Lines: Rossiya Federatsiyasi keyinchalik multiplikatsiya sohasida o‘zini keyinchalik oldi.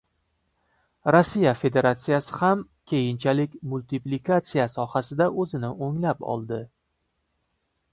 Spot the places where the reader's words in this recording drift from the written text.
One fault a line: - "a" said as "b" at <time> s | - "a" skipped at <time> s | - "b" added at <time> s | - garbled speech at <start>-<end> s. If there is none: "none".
- "ham" added at 2.4 s
- "keyinchalik" said as "o‘nglab" at 5.9 s